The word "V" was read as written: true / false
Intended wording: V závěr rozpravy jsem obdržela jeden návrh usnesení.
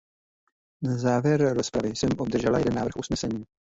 false